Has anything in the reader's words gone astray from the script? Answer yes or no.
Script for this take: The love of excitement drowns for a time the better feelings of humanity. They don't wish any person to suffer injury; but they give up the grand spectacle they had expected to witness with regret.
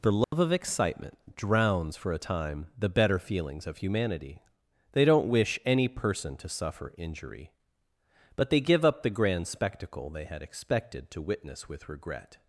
no